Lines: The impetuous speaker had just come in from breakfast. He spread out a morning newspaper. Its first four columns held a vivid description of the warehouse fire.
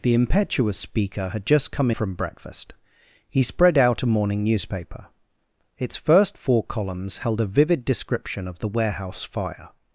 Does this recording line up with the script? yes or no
no